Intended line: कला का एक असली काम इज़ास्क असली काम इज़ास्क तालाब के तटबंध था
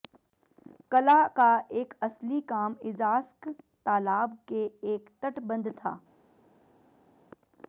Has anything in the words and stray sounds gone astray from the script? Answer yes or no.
yes